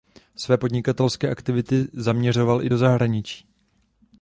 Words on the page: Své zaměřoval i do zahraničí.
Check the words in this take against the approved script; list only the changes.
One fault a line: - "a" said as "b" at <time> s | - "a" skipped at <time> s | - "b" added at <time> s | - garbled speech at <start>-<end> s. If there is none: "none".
- "podnikatelské aktivity" added at 0.6 s